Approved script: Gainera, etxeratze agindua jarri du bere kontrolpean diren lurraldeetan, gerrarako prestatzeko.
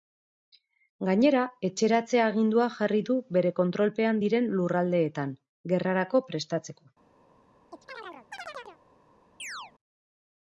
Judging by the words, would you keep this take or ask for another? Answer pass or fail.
pass